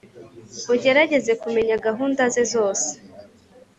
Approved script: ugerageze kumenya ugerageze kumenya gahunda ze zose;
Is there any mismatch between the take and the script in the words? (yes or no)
yes